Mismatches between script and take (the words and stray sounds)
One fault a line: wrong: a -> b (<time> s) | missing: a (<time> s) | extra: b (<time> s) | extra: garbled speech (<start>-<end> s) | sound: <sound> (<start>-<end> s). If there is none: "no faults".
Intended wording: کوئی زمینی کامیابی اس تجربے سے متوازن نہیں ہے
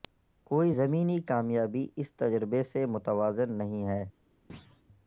sound: thud (4.5-4.8 s)